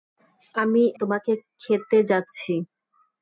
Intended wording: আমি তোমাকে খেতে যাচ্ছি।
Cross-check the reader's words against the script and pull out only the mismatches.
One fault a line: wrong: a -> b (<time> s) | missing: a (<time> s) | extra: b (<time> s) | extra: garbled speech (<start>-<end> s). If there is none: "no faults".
no faults